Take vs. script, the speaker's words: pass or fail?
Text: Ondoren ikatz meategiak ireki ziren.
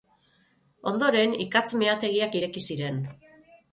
pass